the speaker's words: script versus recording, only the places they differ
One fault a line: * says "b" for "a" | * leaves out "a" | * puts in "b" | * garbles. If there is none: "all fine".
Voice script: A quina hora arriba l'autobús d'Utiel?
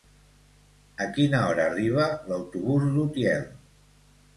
all fine